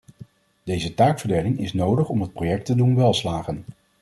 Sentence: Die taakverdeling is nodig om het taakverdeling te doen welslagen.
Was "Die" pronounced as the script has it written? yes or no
no